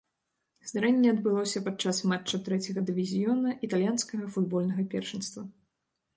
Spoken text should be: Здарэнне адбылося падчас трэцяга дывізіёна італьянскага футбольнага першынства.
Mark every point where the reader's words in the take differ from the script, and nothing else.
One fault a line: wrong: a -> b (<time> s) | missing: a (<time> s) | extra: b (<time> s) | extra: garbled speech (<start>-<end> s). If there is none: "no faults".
extra: матча (2.1 s)